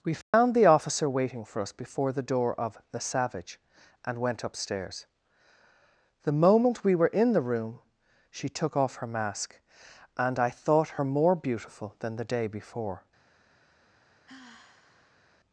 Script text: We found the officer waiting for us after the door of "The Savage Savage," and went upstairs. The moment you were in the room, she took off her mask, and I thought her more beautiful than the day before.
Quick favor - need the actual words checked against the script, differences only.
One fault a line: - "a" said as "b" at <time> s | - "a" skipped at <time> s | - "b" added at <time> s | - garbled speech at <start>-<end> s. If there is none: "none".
- "after" said as "before" at 1.7 s
- "Savage" skipped at 3.6 s
- "you" said as "we" at 6.8 s